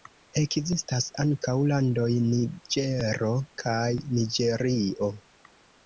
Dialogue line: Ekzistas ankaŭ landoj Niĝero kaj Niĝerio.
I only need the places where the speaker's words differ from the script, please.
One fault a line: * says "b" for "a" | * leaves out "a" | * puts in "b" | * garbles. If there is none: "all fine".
all fine